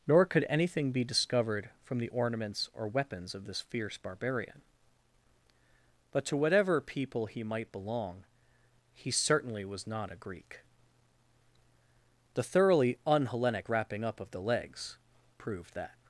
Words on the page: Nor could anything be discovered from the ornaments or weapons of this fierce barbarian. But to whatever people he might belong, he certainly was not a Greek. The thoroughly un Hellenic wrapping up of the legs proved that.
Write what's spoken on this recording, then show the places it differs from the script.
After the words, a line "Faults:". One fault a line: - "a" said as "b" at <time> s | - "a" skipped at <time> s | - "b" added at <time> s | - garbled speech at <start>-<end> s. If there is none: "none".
Nor could anything be discovered from the ornaments or weapons of this fierce barbarian. But to whatever people he might belong, he certainly was not a Greek. The thoroughly un Hellenic wrapping up of the legs proved that.
Faults:
none